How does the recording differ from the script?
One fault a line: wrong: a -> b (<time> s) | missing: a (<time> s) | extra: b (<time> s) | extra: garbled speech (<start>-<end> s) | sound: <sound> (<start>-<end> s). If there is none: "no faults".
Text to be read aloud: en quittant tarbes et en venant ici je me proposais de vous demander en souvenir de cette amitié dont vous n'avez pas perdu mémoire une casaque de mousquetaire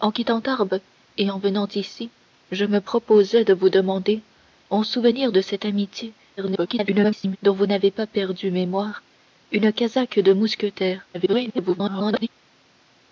extra: garbled speech (6.4-7.4 s)
extra: garbled speech (11.1-12.3 s)